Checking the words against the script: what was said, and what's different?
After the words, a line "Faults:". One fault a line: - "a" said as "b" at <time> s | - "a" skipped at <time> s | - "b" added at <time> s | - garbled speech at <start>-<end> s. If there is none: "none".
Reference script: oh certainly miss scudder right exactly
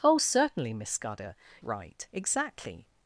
oh certainly miss scudder right exactly
Faults:
none